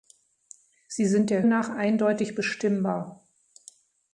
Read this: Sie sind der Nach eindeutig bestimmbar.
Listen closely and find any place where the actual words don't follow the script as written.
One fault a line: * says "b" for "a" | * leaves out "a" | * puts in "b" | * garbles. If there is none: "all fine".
all fine